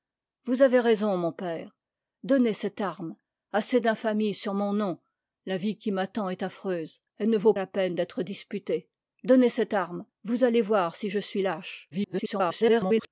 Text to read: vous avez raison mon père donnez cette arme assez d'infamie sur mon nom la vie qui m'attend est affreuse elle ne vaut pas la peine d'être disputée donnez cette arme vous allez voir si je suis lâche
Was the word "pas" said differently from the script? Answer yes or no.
yes